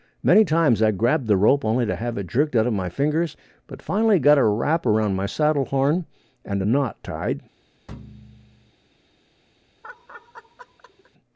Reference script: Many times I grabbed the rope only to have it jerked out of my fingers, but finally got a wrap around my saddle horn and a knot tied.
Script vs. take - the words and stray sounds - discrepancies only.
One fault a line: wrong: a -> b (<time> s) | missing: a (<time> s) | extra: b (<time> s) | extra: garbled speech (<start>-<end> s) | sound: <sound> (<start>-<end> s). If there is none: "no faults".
sound: thud (7.9-8.7 s)
sound: laugh (9.8-11.1 s)